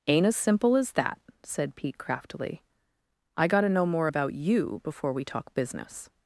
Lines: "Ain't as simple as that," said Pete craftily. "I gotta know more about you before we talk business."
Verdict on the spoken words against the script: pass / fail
pass